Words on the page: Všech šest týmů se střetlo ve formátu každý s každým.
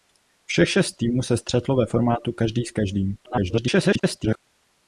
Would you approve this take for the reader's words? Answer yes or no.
no